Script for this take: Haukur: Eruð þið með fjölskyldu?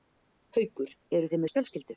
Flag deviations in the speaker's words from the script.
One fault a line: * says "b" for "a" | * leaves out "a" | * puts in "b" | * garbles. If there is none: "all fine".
all fine